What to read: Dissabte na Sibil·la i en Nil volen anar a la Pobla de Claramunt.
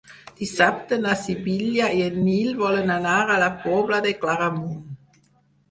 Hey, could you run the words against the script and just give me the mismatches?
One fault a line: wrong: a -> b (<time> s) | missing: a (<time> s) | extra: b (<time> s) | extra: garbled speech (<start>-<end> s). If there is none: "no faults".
no faults